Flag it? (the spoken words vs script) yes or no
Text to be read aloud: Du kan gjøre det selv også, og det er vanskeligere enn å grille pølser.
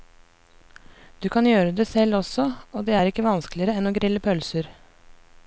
yes